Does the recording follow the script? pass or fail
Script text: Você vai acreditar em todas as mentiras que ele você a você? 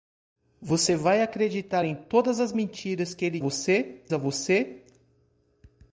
pass